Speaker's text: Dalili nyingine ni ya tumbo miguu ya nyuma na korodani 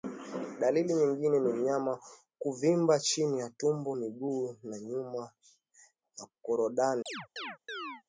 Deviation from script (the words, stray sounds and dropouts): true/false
true